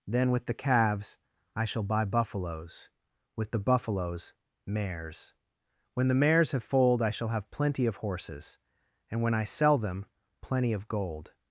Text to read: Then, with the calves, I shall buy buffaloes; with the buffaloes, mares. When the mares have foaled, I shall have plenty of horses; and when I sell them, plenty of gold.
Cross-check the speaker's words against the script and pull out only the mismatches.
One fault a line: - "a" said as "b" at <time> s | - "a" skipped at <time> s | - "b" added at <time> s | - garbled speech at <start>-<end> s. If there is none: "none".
none